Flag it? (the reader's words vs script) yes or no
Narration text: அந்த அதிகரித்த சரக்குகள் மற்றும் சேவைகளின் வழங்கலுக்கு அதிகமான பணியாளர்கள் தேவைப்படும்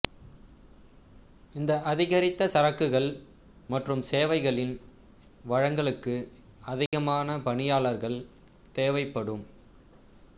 yes